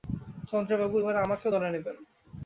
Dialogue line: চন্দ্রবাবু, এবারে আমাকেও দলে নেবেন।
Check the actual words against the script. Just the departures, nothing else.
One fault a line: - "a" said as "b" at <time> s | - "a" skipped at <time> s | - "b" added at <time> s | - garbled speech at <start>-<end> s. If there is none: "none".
none